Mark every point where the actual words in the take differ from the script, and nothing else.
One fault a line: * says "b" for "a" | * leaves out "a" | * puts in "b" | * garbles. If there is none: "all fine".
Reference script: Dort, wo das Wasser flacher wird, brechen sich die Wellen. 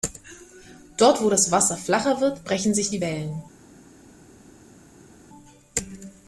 all fine